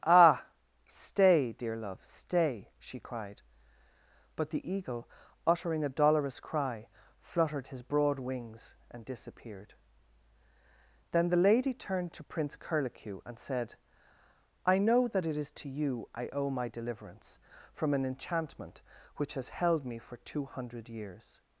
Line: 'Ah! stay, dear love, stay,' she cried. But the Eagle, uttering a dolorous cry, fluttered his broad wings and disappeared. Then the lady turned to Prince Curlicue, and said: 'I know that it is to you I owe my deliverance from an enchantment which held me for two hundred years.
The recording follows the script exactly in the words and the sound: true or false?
false